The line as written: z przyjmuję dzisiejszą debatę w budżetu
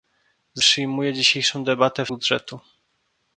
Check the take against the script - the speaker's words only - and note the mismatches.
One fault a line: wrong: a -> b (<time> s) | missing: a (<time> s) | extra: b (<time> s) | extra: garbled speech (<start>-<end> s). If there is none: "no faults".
no faults